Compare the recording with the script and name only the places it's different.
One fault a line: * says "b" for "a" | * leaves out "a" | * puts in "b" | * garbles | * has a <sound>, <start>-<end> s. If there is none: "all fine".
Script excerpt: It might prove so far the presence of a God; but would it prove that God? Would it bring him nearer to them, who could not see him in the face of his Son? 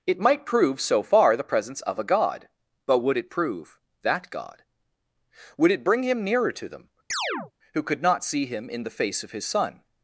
* has a chirp, 7.1-7.5 s